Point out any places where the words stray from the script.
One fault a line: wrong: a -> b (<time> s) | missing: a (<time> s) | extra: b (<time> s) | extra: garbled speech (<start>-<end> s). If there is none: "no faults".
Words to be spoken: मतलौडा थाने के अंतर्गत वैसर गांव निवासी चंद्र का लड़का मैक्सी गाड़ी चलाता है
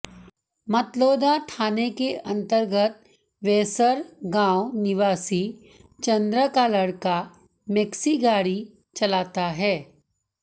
no faults